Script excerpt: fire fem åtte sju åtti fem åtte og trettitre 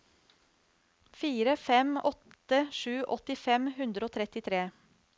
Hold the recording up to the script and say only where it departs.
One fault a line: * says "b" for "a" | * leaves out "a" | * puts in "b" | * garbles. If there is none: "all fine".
* says "hundre" for "åtte"